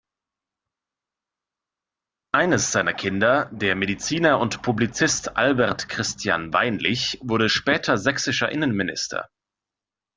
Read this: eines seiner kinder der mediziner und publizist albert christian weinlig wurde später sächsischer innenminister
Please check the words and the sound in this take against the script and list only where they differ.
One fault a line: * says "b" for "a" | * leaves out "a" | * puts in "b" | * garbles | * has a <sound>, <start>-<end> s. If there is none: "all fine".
all fine